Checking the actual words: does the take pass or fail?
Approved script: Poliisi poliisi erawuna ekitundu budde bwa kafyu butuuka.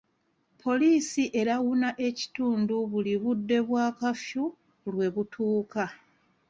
fail